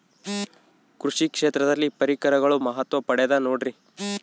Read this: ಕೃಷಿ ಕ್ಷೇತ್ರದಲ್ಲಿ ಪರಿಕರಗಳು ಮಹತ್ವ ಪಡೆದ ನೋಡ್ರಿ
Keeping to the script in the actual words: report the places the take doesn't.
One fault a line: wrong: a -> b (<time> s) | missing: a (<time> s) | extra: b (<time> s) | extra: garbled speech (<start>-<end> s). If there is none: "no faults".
no faults